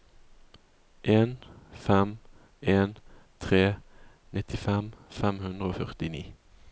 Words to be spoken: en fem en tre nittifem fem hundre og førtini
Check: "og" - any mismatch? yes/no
no